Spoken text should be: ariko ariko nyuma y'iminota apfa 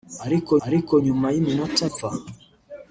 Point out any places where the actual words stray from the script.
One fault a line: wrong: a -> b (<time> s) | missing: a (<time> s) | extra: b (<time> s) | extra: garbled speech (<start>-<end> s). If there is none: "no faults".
no faults